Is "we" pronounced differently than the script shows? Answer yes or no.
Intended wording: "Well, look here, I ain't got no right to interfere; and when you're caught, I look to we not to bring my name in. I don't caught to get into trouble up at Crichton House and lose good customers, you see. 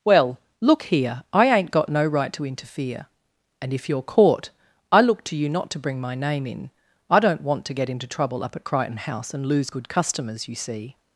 yes